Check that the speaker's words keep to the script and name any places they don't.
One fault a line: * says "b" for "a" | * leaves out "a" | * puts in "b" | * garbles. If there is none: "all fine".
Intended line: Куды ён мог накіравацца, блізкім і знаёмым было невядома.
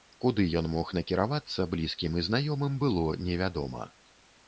all fine